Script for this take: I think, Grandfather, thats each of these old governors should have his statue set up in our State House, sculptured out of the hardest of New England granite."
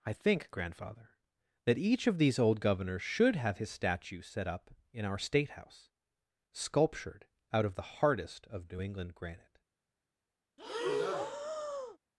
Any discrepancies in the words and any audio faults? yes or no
yes